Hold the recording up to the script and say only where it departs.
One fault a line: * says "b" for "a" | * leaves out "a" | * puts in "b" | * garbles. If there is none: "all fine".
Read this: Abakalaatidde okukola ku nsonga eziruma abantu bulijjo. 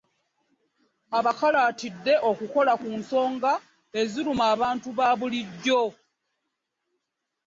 * puts in "ba"